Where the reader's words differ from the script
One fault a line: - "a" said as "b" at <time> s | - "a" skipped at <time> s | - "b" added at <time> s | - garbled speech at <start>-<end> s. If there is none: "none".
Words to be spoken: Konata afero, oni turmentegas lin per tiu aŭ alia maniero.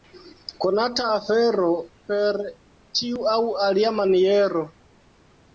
- "oni turmentegas lin" skipped at 1.7 s